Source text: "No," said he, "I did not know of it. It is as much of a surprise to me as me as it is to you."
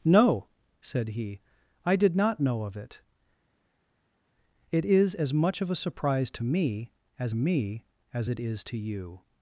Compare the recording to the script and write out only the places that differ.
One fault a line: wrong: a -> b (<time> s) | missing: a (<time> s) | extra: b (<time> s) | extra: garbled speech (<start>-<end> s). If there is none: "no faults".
no faults